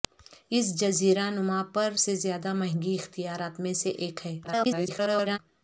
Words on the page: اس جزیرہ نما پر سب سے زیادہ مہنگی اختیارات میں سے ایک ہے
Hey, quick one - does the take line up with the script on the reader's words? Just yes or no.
no